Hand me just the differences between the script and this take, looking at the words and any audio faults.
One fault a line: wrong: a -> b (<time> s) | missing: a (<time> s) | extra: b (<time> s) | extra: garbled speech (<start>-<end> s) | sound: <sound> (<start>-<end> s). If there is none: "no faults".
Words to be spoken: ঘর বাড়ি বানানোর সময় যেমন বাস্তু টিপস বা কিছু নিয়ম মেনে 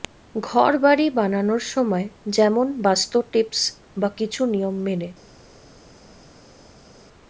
no faults